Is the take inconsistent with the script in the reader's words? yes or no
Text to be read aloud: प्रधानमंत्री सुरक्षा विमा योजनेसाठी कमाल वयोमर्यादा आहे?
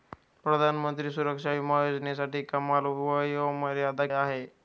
no